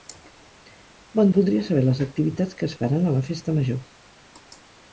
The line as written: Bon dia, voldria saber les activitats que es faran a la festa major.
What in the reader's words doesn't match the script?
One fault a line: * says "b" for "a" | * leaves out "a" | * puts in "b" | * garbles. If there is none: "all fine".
* leaves out "dia"